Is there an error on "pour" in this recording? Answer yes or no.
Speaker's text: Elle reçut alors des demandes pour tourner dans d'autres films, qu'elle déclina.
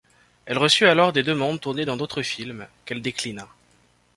yes